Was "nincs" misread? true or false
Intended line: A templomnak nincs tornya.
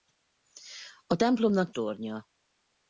true